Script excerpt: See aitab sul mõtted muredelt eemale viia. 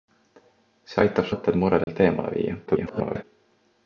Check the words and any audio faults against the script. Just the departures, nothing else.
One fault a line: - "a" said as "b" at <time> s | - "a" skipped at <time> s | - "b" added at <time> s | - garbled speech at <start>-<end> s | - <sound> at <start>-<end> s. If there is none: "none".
- "sul" skipped at 1.3 s
- dropout at 1.8-1.9 s
- garbled speech at 2.7-3.2 s